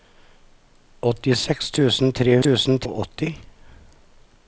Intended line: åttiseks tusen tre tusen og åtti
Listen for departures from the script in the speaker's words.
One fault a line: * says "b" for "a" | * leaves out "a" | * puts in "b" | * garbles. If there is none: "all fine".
all fine